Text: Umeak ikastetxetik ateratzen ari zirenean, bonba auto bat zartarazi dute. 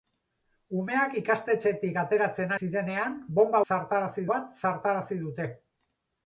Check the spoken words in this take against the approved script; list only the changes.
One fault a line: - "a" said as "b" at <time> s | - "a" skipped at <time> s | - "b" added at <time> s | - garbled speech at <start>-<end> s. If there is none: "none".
- "ari" skipped at 2.5 s
- "auto" said as "zartarazi" at 3.7 s